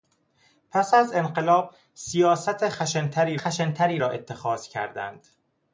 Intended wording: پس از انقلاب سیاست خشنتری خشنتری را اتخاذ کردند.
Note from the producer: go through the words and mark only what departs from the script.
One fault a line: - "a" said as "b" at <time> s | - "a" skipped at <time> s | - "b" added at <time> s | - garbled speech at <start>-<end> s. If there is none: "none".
none